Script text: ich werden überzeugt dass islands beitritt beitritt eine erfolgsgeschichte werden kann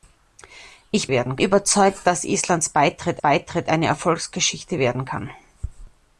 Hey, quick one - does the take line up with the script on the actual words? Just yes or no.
yes